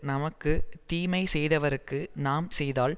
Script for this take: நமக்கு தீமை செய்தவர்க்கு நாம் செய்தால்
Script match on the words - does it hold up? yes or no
yes